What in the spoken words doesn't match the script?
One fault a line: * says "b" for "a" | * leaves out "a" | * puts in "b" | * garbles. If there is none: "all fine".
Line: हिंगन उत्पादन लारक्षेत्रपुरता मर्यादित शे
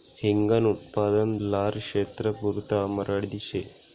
all fine